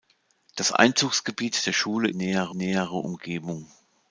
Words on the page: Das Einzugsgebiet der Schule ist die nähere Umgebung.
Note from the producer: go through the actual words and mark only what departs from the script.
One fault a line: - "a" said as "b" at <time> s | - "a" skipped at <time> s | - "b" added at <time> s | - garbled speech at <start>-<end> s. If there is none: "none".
- "ist" said as "nähere" at 2.1 s